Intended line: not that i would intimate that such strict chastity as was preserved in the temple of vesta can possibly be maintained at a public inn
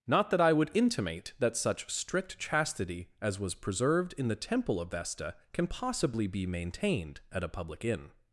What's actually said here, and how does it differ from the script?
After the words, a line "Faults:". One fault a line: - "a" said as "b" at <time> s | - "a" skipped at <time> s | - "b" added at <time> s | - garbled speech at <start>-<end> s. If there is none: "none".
not that i would intimate that such strict chastity as was preserved in the temple of vesta can possibly be maintained at a public inn
Faults:
none